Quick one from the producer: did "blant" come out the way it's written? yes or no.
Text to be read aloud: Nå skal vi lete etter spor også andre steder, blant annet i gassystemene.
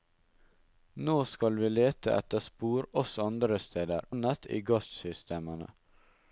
no